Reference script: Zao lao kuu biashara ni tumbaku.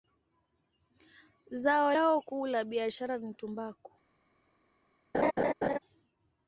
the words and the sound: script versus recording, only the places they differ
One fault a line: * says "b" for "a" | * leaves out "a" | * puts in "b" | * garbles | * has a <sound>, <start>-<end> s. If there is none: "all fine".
* puts in "la"
* has a laugh, 5.1-5.8 s